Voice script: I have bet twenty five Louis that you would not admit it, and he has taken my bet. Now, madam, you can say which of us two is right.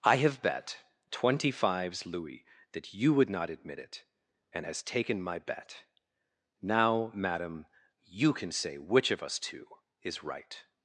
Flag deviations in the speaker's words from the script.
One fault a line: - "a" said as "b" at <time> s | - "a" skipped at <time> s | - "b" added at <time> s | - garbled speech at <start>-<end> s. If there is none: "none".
- "five" said as "fives" at 1.5 s
- "he" skipped at 4.7 s